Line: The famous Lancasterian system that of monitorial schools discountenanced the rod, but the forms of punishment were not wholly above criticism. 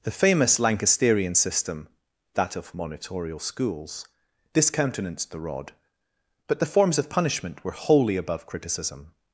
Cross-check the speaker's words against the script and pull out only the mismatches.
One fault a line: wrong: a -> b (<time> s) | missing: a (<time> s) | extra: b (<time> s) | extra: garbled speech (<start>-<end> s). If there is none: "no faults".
missing: not (7.7 s)